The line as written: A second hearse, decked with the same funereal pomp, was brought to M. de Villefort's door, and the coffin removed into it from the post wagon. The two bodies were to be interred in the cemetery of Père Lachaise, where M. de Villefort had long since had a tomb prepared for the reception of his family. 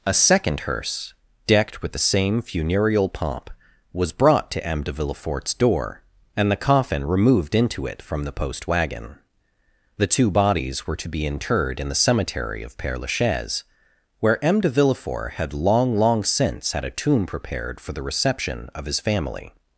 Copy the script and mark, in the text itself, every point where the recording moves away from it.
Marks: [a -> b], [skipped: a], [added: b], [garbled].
A second hearse, decked with the same funereal pomp, was brought to M. de Villefort's door, and the coffin removed into it from the post wagon. The two bodies were to be interred in the cemetery of Père Lachaise, where M. de Villefort had long [added: long] since had a tomb prepared for the reception of his family.